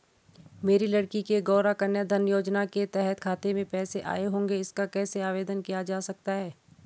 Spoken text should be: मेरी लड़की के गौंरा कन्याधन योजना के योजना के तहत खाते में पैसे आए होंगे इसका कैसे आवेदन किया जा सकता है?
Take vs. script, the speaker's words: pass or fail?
fail